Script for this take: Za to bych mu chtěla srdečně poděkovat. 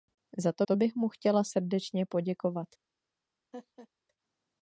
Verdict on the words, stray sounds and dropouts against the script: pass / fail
fail